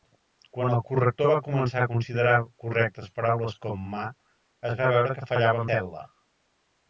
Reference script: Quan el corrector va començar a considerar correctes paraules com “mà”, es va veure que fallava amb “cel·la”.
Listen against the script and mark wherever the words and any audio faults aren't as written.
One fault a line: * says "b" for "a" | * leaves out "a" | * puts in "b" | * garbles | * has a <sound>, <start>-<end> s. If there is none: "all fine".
* leaves out "amb"